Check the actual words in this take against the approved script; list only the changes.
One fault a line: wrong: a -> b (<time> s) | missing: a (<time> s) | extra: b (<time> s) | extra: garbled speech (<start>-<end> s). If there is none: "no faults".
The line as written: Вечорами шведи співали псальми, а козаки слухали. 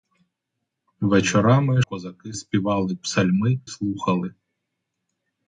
wrong: шведи -> козаки (1.8 s)
missing: а козаки (3.6 s)